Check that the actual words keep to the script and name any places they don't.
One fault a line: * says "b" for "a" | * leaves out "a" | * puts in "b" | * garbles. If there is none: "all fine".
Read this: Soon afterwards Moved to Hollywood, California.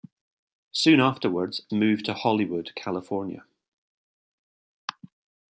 all fine